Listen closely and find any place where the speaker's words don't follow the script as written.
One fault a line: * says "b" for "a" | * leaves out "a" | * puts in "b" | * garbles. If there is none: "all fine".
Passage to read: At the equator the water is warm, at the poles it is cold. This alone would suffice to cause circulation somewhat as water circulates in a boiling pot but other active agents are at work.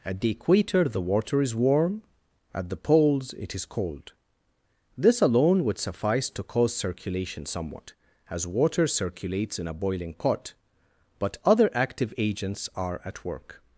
all fine